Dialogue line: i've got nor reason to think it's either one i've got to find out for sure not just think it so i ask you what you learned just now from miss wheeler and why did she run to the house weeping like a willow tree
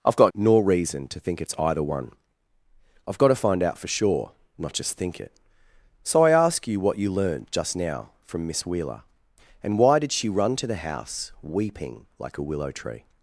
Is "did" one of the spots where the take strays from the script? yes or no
no